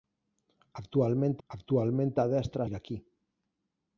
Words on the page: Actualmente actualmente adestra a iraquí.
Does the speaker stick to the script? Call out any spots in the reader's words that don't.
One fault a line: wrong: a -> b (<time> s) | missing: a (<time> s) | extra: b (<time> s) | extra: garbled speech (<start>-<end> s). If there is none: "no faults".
no faults